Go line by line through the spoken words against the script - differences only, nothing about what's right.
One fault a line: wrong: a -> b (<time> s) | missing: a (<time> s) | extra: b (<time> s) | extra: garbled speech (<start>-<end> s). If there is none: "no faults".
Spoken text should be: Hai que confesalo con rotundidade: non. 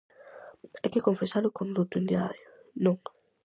no faults